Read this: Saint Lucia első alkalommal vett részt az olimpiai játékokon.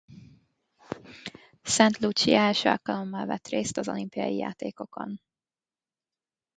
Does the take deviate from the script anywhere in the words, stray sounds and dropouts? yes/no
no